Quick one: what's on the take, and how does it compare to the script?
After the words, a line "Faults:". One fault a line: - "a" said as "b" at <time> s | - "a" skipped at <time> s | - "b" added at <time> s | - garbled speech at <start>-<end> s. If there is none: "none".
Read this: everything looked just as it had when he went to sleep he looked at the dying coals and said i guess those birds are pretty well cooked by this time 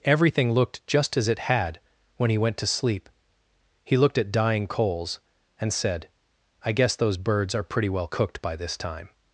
everything looked just as it had when he went to sleep he looked at dying coals and said i guess those birds are pretty well cooked by this time
Faults:
- "the" skipped at 4.3 s